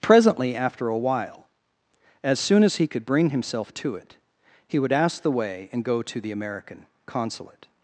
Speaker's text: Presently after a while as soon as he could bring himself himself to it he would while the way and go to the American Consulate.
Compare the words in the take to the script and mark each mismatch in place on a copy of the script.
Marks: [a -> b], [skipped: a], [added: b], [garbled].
Presently after a while as soon as he could bring himself [skipped: himself] to it he would [while -> ask] the way and go to the American Consulate.